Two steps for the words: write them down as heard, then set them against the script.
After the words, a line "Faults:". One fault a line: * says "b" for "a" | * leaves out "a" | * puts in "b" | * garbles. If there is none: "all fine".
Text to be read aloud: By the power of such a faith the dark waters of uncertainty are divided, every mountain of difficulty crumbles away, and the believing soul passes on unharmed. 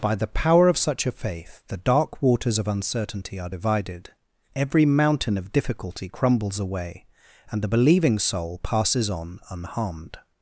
By the power of such a faith the dark waters of uncertainty are divided, every mountain of difficulty crumbles away, and the believing soul passes on unharmed.
Faults:
all fine